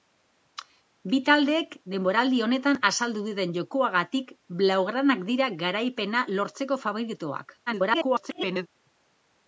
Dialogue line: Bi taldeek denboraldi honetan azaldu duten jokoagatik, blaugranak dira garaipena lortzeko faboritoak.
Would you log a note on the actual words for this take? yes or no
yes